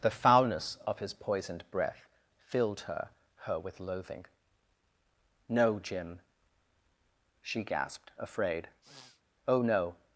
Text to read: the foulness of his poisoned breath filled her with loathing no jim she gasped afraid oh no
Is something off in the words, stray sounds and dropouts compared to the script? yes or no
yes